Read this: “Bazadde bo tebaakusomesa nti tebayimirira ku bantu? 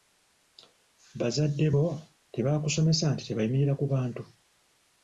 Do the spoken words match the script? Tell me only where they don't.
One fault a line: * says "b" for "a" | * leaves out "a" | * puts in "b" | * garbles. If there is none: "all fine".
all fine